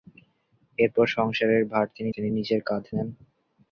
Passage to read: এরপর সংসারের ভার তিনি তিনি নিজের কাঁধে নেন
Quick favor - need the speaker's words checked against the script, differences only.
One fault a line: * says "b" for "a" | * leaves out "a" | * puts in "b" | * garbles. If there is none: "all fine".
all fine